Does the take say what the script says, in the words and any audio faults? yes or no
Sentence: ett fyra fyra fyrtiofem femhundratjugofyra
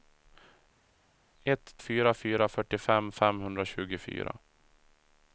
yes